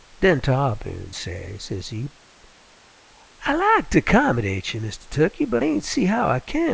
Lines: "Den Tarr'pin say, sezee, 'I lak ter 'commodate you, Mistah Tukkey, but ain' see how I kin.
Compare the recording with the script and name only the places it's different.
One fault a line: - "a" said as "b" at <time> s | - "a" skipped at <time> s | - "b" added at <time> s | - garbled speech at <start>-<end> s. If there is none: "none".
none